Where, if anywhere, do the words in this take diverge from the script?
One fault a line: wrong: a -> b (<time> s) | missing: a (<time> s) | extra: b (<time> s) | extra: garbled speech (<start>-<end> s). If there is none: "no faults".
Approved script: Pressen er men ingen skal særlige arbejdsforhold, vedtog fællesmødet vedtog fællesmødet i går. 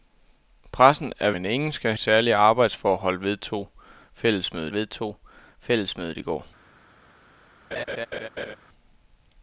no faults